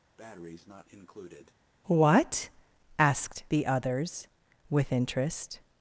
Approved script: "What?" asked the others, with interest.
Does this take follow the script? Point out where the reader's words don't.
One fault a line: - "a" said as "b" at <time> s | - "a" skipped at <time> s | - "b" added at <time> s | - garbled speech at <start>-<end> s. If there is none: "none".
none